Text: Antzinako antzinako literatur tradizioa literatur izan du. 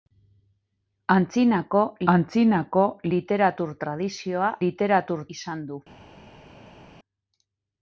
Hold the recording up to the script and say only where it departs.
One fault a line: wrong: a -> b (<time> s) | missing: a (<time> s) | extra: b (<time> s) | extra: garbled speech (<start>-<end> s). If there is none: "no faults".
no faults